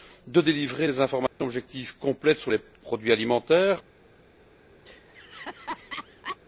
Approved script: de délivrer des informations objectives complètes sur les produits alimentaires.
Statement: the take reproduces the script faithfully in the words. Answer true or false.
true